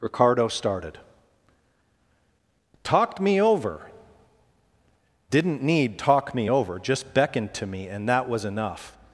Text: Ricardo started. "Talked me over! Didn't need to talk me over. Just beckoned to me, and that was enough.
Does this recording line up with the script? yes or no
no